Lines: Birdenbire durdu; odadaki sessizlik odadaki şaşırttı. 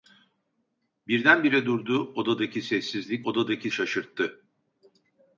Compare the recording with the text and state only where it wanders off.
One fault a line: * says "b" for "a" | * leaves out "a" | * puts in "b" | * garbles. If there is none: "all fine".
all fine